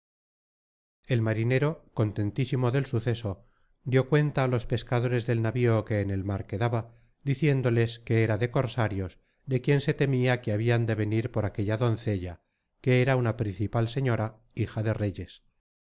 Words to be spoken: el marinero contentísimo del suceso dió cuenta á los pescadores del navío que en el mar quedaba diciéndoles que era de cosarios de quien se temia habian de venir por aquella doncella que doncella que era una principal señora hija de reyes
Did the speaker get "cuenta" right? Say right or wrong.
right